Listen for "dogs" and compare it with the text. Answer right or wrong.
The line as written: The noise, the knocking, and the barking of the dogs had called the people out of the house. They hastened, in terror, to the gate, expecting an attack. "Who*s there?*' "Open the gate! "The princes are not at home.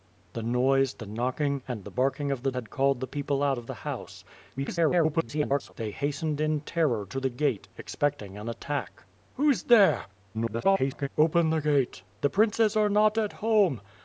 wrong